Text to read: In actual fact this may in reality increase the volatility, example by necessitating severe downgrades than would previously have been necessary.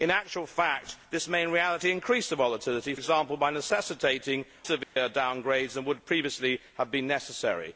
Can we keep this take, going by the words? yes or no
yes